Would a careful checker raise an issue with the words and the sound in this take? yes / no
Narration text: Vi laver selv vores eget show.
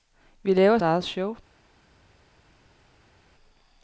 yes